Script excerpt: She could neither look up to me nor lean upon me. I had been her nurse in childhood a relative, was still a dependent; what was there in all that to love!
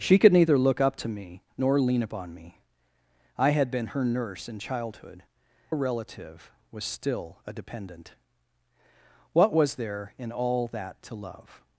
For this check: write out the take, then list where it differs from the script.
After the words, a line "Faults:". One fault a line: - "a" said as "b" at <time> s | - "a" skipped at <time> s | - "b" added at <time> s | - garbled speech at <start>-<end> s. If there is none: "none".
She could neither look up to me nor lean upon me. I had been her nurse in childhood a relative, was still a dependent; what was there in all that to love!
Faults:
none